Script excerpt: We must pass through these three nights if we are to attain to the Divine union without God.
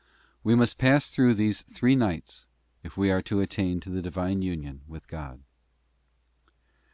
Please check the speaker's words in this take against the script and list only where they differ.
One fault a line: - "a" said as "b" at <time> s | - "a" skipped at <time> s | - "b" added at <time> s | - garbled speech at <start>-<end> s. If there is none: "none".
- "without" said as "with" at 4.9 s